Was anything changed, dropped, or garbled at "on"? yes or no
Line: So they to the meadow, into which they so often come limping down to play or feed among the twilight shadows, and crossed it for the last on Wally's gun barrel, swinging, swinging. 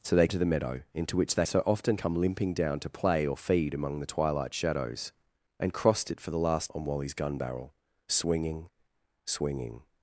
no